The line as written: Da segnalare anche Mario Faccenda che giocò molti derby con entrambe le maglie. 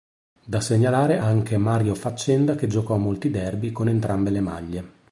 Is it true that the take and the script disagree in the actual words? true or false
false